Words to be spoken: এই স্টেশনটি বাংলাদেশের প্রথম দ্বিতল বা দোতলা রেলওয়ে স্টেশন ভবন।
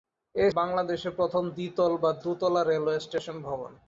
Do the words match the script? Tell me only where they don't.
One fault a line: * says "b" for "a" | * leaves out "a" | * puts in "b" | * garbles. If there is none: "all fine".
* leaves out "স্টেশনটি"